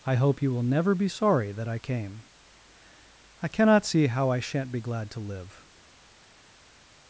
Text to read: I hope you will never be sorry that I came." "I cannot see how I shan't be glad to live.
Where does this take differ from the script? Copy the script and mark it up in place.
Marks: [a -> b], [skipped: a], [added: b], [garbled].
I hope you will never be sorry that I came." "I cannot see how I shan't be glad to live.